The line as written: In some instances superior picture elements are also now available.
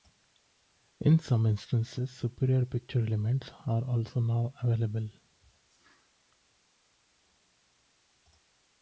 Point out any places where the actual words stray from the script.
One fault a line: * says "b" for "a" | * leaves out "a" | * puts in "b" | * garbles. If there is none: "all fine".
all fine